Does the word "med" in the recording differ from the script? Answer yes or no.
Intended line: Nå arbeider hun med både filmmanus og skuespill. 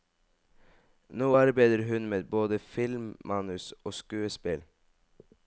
no